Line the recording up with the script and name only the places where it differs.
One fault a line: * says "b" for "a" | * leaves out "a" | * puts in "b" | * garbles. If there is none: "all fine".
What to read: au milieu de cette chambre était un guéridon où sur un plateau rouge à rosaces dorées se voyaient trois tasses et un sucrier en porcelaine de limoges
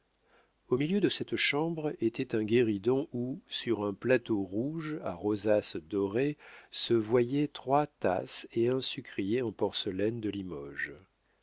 all fine